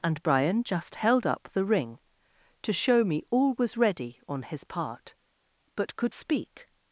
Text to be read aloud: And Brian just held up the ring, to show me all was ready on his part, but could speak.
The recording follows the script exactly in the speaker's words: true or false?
true